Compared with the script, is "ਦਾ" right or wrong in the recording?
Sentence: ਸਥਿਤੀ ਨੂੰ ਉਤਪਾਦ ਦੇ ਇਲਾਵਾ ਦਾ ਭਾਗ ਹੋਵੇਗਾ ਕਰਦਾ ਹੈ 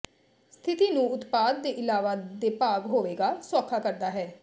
wrong